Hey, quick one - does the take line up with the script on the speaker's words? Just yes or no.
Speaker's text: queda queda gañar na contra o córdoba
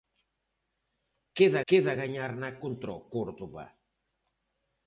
yes